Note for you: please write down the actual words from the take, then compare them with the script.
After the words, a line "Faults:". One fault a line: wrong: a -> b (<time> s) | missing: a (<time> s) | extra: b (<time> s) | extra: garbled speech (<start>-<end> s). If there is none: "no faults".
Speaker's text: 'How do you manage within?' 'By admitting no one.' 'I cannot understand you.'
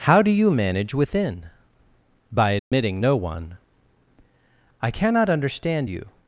'How do you manage within?' 'By admitting no one.' 'I cannot understand you.'
Faults:
no faults